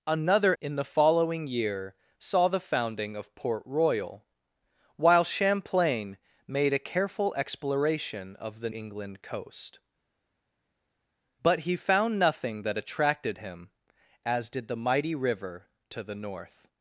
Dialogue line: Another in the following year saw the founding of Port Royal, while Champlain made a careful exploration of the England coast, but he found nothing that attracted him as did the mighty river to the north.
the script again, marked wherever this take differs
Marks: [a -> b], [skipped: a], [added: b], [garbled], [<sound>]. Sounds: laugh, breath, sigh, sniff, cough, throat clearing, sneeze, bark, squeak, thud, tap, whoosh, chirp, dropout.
Another in the following year saw the founding of Port Royal, while Champlain made a careful exploration of the England coast, but he found nothing that attracted him as did the mighty river to the north.